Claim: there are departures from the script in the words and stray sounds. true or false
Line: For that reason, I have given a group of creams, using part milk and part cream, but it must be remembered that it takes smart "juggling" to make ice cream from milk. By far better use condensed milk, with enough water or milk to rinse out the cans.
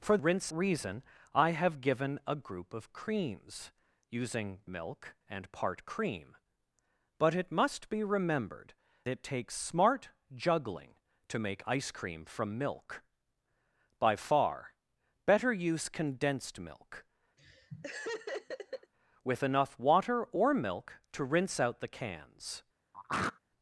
true